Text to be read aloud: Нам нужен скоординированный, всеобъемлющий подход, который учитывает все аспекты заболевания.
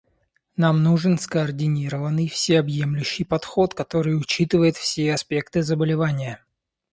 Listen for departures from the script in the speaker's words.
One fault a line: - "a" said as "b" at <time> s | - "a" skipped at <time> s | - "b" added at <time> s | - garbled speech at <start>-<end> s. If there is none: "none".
none